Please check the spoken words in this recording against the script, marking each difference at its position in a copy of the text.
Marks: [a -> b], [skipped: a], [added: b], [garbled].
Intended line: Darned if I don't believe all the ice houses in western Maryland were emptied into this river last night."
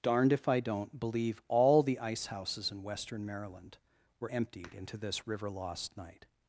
Darned if I don't believe all the ice houses in western Maryland were emptied into this river [last -> lost] night."